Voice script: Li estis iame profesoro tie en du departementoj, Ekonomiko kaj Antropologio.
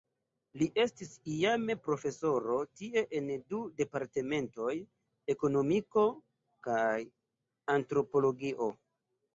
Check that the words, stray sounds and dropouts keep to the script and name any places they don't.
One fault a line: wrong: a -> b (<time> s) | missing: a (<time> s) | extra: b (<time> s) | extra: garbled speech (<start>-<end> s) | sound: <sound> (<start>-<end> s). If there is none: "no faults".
no faults